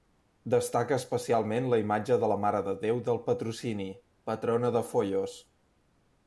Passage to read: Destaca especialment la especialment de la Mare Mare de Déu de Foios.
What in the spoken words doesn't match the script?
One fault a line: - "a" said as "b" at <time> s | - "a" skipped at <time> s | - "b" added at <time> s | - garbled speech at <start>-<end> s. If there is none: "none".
- "especialment" said as "imatge" at 1.8 s
- "Mare" skipped at 2.6 s
- "del Patrocini patrona" added at 3.1 s